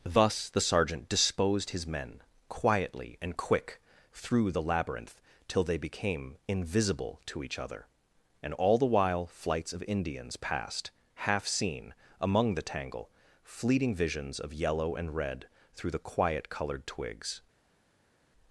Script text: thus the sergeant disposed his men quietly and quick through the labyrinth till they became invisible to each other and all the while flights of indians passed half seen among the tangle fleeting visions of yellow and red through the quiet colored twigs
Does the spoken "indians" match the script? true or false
true